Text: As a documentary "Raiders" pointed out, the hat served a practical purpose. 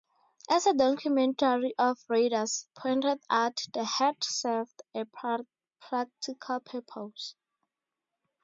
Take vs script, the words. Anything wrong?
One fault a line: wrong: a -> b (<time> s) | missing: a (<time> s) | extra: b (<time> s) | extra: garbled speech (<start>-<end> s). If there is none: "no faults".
extra: of (1.8 s)